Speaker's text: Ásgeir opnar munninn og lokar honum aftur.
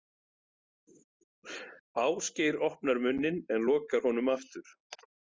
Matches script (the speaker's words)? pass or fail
fail